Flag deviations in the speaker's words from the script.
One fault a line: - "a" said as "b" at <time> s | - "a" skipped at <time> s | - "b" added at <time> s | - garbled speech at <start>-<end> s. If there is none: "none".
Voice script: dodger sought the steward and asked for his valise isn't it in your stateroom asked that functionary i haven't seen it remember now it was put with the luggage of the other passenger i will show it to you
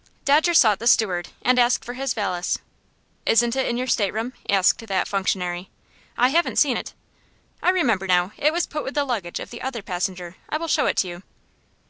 - "i" added at 7.6 s